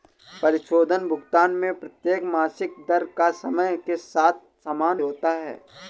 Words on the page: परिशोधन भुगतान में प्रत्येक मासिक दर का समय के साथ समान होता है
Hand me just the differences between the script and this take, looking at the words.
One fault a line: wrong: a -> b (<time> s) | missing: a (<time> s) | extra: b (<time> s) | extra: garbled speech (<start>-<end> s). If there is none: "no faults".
no faults